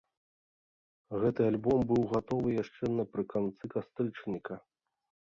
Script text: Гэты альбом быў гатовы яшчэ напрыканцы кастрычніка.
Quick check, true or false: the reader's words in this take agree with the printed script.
true